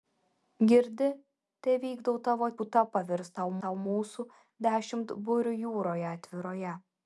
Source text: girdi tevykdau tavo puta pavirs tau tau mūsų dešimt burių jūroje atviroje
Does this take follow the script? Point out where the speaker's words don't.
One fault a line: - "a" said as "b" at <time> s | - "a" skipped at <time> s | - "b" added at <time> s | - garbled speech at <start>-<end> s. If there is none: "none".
none